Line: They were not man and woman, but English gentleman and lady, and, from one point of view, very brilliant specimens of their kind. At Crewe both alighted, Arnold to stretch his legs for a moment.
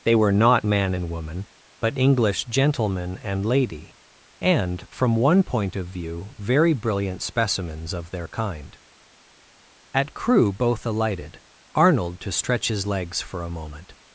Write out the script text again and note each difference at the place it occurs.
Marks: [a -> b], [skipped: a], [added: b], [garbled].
They were not man and woman, but English gentleman and lady, and, from one point of view, very brilliant specimens of their kind. At Crewe both alighted, Arnold to stretch his legs for a moment.